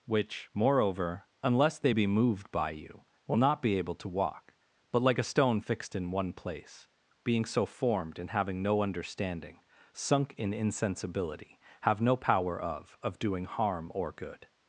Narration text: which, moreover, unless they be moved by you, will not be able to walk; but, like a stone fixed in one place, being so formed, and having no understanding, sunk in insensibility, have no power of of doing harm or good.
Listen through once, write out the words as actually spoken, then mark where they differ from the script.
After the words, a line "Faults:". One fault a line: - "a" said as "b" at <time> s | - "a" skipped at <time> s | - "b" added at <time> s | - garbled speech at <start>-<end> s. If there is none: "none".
which, moreover, unless they be moved by you, will not be able to walk; but, like a stone fixed in one place, being so formed, and having no understanding, sunk in insensibility, have no power of of doing harm or good.
Faults:
none